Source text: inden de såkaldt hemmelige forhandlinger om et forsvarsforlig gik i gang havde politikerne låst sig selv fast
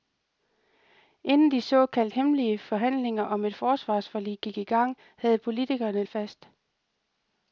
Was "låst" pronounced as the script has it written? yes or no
no